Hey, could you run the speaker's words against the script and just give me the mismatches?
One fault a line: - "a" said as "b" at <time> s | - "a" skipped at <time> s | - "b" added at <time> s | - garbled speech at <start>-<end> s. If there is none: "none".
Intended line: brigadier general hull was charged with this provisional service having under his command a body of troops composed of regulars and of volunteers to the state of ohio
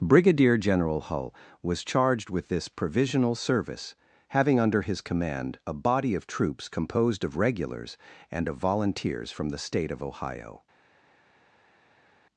- "to" said as "from" at 9.3 s